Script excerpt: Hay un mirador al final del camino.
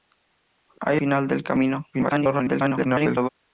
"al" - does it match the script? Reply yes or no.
no